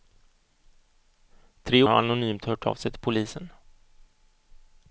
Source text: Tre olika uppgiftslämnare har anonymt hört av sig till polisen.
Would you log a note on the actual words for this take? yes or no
yes